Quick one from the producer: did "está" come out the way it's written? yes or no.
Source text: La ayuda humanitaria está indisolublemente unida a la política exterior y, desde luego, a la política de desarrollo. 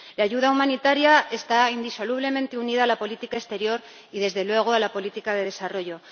yes